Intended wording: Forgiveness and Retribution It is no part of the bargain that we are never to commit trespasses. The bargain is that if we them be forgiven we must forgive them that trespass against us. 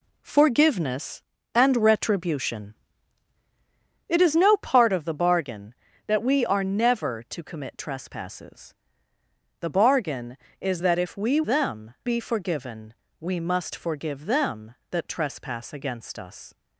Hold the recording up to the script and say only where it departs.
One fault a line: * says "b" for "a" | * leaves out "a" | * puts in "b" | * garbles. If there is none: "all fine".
all fine